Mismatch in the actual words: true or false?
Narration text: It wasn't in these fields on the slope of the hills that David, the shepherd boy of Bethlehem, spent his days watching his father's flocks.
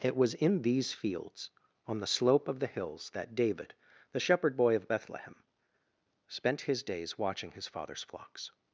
true